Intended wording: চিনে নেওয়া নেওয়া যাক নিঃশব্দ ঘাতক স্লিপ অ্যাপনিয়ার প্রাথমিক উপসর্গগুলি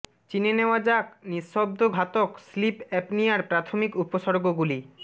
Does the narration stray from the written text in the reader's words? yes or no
yes